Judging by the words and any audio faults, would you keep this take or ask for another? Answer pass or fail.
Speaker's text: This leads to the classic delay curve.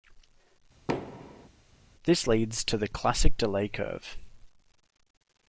fail